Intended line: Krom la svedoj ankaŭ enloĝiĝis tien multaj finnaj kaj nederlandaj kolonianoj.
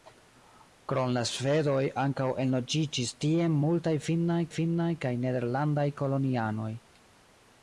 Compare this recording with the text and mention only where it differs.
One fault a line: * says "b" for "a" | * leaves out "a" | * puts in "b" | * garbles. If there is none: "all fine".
* puts in "finnaj"